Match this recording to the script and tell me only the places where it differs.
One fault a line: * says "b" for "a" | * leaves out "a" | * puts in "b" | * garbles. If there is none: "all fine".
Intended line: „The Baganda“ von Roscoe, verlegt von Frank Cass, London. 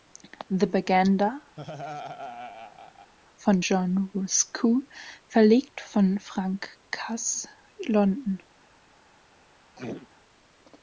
* puts in "John"